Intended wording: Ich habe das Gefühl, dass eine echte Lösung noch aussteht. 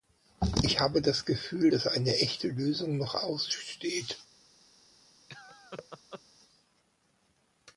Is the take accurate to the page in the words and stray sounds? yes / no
no